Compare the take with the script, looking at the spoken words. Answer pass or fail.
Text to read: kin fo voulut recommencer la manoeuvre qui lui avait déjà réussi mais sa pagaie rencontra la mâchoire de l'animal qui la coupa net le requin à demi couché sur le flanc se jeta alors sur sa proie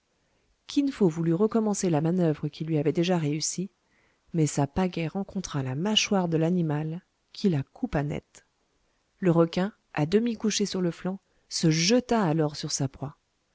pass